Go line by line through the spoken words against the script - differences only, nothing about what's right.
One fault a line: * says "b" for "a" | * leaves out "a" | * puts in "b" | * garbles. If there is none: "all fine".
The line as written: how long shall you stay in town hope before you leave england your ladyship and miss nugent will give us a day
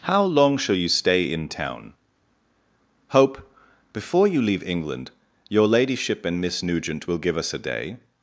all fine